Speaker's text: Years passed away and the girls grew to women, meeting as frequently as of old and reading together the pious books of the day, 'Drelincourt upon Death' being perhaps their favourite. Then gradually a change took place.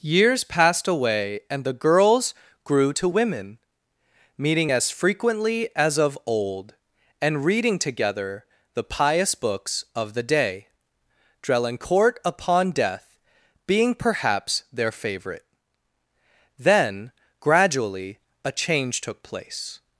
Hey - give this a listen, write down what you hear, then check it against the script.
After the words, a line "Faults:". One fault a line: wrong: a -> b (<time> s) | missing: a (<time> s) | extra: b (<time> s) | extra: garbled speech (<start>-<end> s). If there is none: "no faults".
Years passed away and the girls grew to women, meeting as frequently as of old and reading together the pious books of the day, 'Drelincourt upon Death' being perhaps their favourite. Then gradually a change took place.
Faults:
no faults